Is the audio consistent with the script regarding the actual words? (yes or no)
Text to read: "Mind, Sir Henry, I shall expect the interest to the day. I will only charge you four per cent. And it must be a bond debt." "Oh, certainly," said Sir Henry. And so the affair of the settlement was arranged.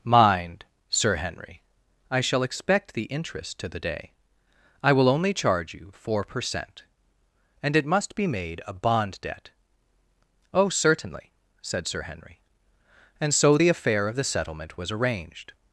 no